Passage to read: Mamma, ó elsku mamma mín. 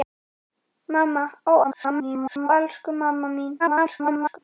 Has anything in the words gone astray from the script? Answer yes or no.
yes